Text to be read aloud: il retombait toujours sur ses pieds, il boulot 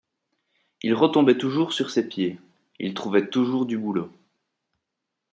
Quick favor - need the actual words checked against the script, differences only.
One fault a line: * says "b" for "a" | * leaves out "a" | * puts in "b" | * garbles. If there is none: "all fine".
* puts in "trouvait toujours du"